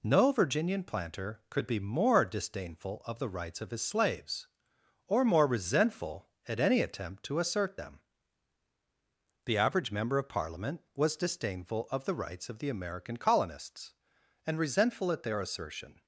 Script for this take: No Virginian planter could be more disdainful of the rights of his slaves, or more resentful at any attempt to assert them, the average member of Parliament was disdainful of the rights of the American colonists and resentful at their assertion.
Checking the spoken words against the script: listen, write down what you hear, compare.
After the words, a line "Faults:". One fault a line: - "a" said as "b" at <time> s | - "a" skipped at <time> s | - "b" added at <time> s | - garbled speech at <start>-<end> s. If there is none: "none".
No Virginian planter could be more disdainful of the rights of his slaves, or more resentful at any attempt to assert them, the average member of Parliament was disdainful of the rights of the American colonists and resentful at their assertion.
Faults:
none